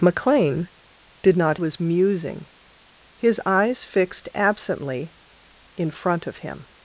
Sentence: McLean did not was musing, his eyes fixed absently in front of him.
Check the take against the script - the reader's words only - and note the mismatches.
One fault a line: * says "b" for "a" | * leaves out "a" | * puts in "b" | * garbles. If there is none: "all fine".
all fine